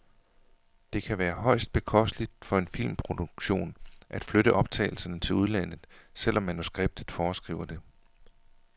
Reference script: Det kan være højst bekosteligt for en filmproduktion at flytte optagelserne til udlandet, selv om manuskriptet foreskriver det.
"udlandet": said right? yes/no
yes